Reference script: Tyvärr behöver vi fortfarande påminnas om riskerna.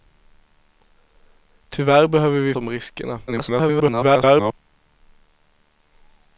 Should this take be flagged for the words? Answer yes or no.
yes